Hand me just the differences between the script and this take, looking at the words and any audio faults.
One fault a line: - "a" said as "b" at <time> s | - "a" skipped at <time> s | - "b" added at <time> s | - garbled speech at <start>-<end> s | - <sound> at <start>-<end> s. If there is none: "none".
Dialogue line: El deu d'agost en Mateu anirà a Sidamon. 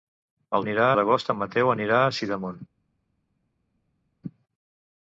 - "deu" said as "anirà" at 0.6 s